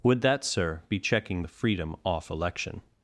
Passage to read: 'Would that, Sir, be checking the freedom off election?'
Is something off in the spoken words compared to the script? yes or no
no